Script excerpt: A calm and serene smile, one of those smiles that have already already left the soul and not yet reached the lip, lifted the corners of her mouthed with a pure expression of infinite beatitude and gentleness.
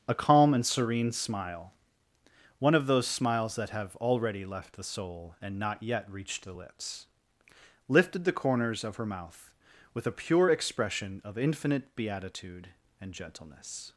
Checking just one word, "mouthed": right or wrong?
wrong